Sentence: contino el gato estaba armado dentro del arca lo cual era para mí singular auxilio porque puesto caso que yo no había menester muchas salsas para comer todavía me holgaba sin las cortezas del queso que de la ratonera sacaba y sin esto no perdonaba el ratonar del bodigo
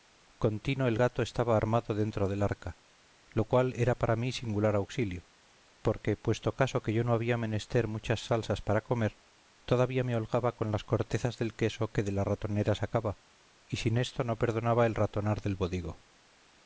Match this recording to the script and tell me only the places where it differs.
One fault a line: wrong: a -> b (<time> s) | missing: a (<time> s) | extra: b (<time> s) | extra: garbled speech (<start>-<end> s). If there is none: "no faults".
wrong: sin -> con (10.6 s)